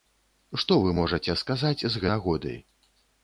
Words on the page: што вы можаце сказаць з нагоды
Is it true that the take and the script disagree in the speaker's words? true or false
false